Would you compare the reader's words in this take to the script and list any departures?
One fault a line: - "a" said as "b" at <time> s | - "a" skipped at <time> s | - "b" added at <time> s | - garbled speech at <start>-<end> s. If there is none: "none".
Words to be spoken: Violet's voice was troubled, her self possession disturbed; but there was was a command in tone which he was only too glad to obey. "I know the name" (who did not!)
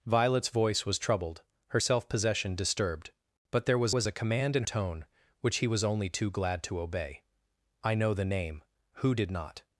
none